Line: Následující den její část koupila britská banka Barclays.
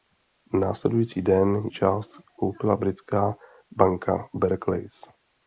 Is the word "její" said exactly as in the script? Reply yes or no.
no